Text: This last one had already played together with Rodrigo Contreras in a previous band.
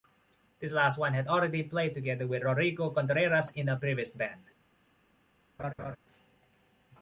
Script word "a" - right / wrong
right